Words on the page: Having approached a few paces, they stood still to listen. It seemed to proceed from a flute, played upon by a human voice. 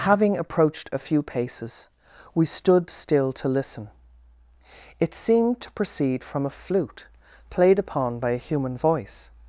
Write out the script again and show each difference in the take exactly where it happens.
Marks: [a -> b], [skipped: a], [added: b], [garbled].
Having approached a few paces, [they -> we] stood still to listen. It seemed to proceed from a flute, played upon by a human voice.